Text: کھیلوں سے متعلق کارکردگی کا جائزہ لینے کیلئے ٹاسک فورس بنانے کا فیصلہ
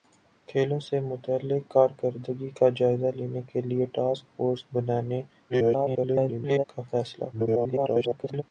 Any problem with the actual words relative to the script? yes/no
yes